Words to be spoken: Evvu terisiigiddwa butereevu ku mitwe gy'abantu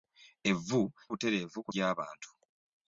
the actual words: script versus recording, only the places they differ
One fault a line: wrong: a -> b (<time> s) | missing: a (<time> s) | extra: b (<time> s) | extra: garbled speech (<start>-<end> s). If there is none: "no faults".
missing: terisiigiddwa (0.8 s)
missing: mitwe (1.7 s)